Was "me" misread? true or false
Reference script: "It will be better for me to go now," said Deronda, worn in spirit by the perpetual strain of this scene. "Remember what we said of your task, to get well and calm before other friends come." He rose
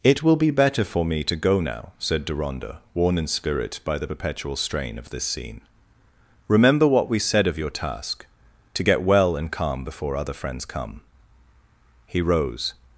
false